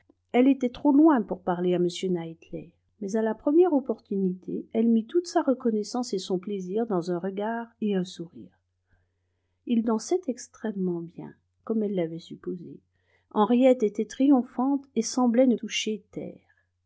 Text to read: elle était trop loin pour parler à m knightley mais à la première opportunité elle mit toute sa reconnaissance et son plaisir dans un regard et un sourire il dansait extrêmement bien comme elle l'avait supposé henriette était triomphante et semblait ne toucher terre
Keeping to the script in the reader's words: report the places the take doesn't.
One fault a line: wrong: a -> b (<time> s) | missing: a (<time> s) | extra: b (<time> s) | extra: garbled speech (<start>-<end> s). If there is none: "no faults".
no faults